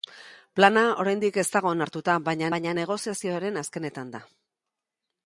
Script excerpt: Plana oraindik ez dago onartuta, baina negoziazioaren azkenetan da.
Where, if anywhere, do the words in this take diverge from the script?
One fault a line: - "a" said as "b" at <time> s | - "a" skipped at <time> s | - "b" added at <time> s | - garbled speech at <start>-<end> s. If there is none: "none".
- "baina" added at 2.6 s